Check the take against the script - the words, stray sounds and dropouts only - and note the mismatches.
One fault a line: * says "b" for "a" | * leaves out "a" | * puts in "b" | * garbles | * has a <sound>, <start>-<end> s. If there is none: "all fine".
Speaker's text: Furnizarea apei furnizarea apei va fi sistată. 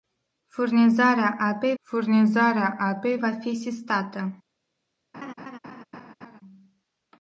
* has a laugh, 5.1-6.4 s